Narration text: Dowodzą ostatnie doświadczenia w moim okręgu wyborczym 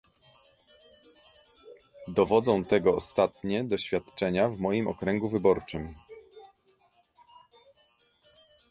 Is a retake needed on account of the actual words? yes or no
yes